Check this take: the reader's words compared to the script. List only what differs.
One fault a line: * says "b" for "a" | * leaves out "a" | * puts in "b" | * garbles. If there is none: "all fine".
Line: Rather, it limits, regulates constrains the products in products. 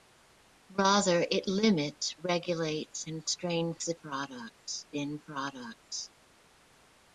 all fine